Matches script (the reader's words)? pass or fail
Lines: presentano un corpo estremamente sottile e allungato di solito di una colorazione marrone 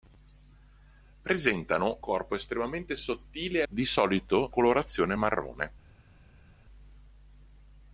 fail